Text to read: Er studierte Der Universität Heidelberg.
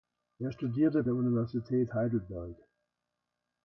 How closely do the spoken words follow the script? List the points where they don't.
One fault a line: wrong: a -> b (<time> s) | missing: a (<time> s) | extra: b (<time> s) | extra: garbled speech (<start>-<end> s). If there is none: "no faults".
no faults